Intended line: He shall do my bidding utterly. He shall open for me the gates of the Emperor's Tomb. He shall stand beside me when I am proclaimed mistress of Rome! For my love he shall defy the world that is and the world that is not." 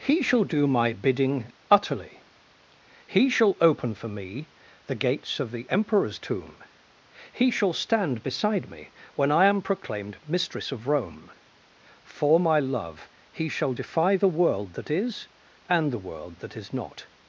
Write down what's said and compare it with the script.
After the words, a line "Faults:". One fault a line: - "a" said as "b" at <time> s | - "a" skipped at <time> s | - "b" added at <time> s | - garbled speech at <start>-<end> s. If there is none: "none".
He shall do my bidding utterly. He shall open for me the gates of the Emperor's Tomb. He shall stand beside me when I am proclaimed mistress of Rome! For my love he shall defy the world that is and the world that is not."
Faults:
none